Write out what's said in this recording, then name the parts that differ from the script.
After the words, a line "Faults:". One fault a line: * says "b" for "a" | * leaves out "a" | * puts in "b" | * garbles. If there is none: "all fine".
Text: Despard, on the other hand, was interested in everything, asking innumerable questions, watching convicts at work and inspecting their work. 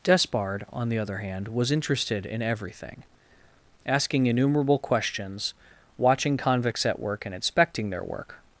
Despard, on the other hand, was interested in everything, asking innumerable questions, watching convicts at work and inspecting their work.
Faults:
all fine